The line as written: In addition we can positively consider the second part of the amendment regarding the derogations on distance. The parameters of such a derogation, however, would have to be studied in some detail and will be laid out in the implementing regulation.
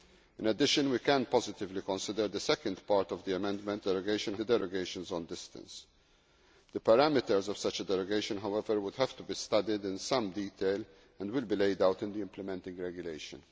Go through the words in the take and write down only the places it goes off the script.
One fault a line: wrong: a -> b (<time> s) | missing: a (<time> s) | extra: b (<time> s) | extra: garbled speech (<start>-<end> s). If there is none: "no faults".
wrong: regarding -> derogation (3.8 s)